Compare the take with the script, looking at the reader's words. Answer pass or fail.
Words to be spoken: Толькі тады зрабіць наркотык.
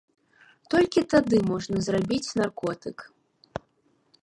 fail